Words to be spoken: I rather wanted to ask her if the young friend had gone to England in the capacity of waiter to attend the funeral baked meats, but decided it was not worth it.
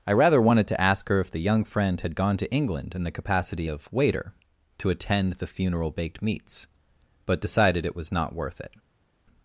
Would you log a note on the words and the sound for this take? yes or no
no